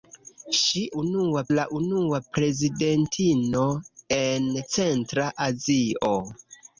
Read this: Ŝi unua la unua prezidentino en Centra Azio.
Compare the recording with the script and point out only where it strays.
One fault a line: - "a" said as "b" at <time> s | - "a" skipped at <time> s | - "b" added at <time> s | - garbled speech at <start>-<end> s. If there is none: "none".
none